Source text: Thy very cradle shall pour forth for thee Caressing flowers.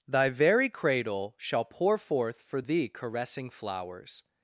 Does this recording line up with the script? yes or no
yes